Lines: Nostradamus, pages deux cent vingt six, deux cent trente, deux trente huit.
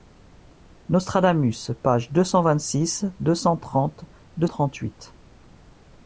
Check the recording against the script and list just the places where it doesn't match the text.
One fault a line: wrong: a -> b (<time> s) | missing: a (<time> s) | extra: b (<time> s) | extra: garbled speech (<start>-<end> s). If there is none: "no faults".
no faults